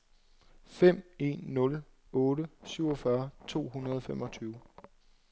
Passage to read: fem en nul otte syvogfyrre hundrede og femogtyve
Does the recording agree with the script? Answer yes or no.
no